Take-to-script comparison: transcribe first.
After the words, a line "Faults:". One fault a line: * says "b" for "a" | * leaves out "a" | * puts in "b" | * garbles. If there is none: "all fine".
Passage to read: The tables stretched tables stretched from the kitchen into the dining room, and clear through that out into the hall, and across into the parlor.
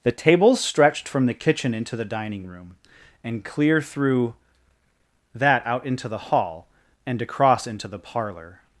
The tables stretched from the kitchen into the dining room, and clear through that out into the hall, and across into the parlor.
Faults:
* leaves out "tables stretched"